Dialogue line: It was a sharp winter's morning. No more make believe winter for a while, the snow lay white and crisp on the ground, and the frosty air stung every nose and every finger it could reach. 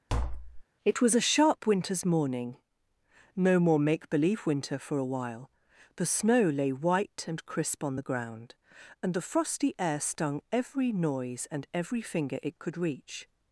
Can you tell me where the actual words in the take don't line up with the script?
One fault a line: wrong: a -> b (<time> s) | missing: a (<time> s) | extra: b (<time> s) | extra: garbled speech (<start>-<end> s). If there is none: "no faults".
wrong: nose -> noise (10.9 s)